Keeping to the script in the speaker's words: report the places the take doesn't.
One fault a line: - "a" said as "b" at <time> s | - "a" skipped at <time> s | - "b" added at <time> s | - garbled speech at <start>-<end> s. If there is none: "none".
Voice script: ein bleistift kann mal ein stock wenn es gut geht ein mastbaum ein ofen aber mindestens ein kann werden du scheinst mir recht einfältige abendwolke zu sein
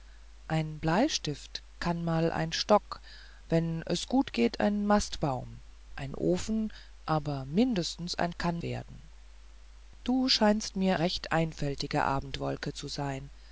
none